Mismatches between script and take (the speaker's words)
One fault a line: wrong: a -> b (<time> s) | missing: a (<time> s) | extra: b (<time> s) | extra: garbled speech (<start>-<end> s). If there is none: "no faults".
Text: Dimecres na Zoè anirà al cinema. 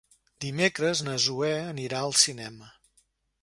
no faults